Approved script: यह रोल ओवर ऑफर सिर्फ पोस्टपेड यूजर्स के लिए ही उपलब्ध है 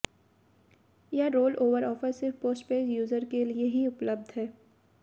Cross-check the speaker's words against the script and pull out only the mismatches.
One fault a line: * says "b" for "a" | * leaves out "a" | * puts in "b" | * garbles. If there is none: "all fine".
all fine